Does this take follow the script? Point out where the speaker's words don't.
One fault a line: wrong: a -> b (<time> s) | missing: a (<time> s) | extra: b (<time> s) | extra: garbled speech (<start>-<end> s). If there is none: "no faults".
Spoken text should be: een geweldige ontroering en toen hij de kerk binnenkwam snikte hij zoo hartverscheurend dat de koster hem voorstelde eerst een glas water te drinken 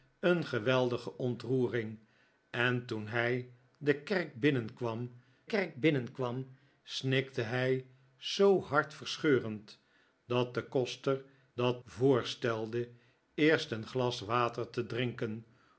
extra: kerk binnenkwam (5.4 s)
wrong: hem -> dat (11.5 s)